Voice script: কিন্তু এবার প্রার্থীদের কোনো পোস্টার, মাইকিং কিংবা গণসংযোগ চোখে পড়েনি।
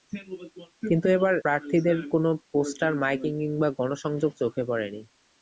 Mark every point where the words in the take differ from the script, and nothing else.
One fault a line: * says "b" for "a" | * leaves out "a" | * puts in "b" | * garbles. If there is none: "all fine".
all fine